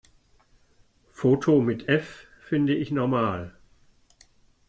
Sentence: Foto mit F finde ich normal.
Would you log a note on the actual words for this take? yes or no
no